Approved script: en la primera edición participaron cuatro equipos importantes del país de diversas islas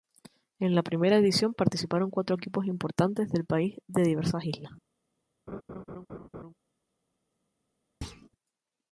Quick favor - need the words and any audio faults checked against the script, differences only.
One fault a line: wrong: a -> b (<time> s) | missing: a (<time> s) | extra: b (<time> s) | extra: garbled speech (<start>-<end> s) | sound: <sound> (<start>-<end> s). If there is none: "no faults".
sound: laugh (5.5-6.5 s)
sound: thud (8.0-8.3 s)